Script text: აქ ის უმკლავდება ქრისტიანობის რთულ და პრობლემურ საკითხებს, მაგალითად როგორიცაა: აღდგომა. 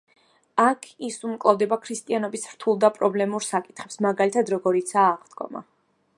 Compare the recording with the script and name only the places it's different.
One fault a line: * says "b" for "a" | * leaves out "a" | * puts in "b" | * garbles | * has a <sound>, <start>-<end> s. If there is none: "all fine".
all fine